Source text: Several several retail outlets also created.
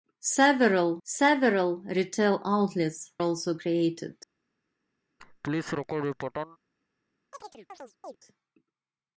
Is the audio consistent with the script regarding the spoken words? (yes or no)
yes